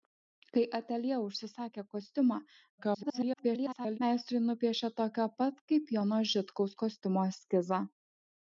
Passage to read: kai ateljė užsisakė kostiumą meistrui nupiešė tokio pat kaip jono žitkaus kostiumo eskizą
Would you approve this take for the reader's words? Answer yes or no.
no